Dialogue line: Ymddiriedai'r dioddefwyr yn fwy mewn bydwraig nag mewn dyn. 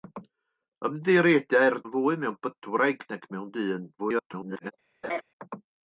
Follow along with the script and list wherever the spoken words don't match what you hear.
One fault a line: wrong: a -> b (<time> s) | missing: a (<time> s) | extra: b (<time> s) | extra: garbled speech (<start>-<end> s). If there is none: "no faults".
missing: dioddefwyr (1.8 s)
extra: garbled speech (4.0-4.7 s)